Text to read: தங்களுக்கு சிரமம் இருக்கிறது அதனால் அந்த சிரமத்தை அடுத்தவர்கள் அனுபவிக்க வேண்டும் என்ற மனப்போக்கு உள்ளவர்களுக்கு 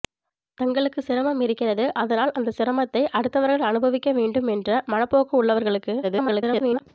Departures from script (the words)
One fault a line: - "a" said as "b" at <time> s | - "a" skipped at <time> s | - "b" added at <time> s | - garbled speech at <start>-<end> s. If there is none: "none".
- garbled speech at 6.0-6.8 s